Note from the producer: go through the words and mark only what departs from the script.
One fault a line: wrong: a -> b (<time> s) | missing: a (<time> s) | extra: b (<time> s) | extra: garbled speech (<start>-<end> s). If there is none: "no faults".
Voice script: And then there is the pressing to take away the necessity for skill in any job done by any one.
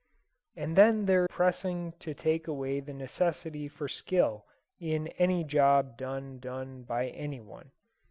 missing: is the (1.3 s)
extra: done (6.4 s)